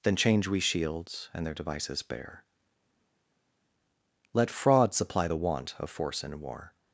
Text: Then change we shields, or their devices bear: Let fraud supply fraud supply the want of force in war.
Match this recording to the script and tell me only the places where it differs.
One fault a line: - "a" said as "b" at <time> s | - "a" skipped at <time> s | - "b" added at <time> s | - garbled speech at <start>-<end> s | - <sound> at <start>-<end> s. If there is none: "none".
- "or" said as "and" at 1.3 s
- "fraud supply" skipped at 5.3 s